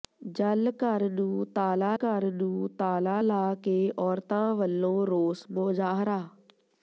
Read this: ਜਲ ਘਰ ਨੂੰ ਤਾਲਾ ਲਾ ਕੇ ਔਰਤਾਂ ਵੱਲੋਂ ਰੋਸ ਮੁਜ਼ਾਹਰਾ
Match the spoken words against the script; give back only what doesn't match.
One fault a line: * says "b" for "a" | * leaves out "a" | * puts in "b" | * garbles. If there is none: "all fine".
* puts in "ਘਰ ਨੂੰ ਤਾਲਾ"